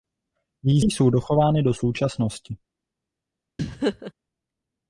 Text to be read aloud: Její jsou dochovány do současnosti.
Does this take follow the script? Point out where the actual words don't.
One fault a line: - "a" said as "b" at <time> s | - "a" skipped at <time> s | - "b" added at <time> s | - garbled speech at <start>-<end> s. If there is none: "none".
none